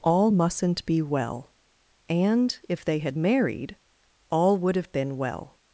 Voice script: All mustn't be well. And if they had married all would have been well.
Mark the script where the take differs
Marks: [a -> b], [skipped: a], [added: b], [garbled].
All mustn't be well. And if they had married all would have been well.